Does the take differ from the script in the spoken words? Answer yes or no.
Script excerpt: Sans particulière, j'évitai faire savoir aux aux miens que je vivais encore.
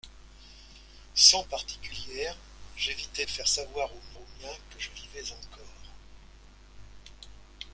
no